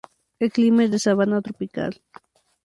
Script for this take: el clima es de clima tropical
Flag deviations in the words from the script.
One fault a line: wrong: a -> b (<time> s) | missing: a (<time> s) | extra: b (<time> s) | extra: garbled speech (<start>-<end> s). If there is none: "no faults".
wrong: clima -> sabana (1.0 s)